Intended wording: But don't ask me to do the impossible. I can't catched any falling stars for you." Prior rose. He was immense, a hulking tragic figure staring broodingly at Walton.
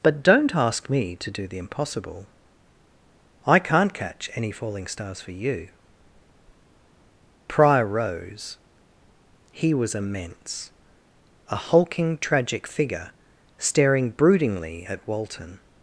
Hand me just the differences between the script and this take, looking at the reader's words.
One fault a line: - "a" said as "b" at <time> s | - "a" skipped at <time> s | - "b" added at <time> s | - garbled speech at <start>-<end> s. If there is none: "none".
- "catched" said as "catch" at 3.9 s